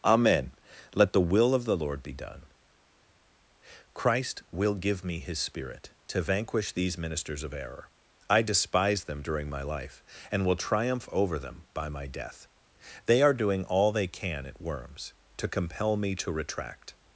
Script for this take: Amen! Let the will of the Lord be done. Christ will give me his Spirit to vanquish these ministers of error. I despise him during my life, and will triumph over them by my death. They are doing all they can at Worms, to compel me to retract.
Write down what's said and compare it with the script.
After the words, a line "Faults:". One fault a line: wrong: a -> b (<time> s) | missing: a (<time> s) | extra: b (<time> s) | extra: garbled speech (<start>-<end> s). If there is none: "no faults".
Amen! Let the will of the Lord be done. Christ will give me his Spirit to vanquish these ministers of error. I despise them during my life, and will triumph over them by my death. They are doing all they can at Worms, to compel me to retract.
Faults:
wrong: him -> them (9.0 s)